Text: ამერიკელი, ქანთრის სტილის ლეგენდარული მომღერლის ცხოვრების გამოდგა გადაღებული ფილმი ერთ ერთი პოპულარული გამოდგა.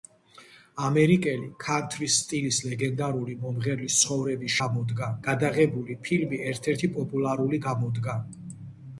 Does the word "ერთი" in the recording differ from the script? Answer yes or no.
no